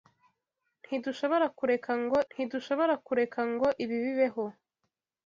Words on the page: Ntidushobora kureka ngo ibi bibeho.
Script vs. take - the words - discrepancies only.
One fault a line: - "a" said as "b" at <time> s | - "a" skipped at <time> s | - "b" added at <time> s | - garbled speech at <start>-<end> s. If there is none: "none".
- "ntidushobora kureka ngo" added at 2.3 s